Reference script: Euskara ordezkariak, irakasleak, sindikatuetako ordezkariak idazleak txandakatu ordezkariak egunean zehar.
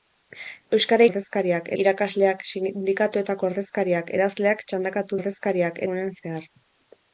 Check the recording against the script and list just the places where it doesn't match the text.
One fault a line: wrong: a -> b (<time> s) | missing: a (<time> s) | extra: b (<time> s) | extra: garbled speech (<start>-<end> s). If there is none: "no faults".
no faults